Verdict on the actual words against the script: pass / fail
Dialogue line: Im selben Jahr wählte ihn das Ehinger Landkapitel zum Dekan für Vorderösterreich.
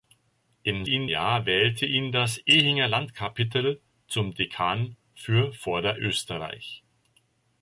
fail